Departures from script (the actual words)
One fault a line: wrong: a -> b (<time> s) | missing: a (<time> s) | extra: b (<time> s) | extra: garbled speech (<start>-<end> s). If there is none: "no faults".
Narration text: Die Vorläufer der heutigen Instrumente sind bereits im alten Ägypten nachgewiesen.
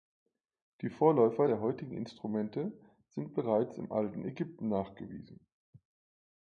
no faults